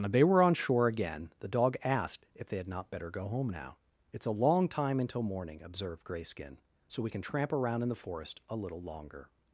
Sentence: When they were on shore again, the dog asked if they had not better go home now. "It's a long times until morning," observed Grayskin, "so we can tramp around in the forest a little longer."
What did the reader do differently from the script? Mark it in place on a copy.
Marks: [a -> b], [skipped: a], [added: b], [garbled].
When they were on shore again, the dog asked if they had not better go home now. "It's a long [times -> time] until morning," observed Grayskin, "so we can tramp around in the forest a little longer."